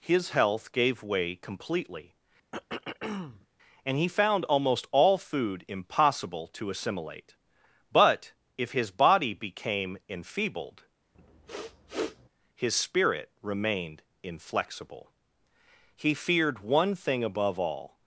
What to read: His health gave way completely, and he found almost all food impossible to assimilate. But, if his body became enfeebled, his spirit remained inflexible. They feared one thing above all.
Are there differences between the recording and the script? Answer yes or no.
yes